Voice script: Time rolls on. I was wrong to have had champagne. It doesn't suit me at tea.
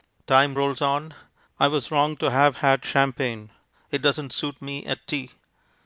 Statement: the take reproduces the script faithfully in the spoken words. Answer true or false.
true